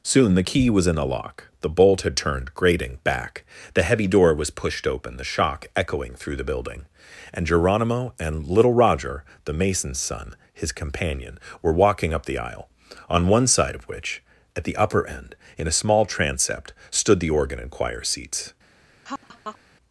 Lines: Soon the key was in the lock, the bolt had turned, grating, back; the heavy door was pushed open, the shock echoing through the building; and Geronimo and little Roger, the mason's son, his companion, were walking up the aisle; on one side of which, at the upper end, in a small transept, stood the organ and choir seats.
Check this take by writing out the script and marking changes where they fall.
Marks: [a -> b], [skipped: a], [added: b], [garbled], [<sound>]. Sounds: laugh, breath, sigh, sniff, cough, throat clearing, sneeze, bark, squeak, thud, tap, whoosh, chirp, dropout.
Soon the key was in the lock, the bolt had turned, grating, back; the heavy door was pushed open, the shock echoing through the building; and Geronimo and little Roger, the mason's son, his companion, were walking up the aisle; on one side of which, at the upper end, in a small transept, stood the organ and choir seats. [laugh]